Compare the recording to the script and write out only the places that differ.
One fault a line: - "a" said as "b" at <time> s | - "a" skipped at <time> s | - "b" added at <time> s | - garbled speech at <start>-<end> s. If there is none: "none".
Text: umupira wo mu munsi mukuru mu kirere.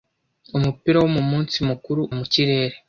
none